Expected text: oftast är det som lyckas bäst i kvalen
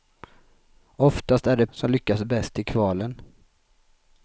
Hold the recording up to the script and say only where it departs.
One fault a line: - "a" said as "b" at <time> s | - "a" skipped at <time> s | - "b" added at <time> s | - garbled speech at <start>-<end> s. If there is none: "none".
none